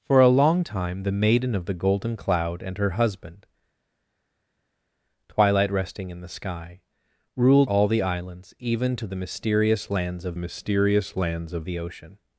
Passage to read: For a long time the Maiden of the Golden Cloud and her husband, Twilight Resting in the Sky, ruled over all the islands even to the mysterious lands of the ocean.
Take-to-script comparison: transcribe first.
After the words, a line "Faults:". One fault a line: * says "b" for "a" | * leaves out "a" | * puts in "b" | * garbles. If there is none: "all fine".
For a long time the Maiden of the Golden Cloud and her husband, Twilight Resting in the Sky, ruled all the islands even to the mysterious lands of mysterious lands of the ocean.
Faults:
* leaves out "over"
* puts in "mysterious lands of"